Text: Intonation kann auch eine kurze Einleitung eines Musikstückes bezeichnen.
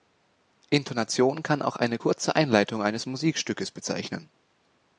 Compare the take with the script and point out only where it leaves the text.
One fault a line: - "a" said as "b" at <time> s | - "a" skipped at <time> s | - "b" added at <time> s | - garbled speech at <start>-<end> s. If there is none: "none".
none